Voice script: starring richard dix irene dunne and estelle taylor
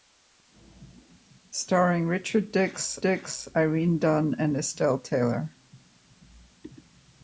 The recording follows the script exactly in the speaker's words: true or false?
false